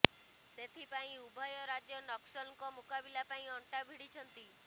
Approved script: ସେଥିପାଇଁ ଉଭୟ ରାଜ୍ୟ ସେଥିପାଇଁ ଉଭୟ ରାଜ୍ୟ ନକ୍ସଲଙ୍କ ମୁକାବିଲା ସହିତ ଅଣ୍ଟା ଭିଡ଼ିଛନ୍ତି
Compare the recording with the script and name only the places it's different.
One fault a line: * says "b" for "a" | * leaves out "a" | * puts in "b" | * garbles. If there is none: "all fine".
* leaves out "ସେଥିପାଇଁ ଉଭୟ ରାଜ୍ୟ"
* says "ପାଇଁ" for "ସହିତ"